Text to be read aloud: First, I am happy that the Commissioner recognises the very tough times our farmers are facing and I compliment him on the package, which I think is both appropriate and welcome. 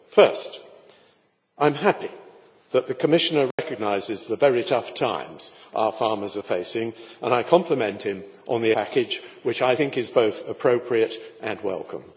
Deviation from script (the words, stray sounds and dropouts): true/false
true